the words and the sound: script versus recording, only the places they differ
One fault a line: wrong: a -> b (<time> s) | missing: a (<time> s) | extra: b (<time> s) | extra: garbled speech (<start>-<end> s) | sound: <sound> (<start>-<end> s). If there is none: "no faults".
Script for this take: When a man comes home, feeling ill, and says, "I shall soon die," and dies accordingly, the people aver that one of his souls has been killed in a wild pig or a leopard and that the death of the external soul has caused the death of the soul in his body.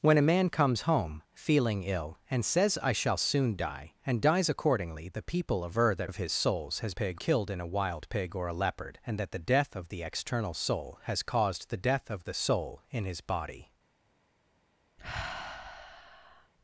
missing: one (6.1 s)
wrong: been -> pig (6.9 s)
sound: sigh (15.0-16.5 s)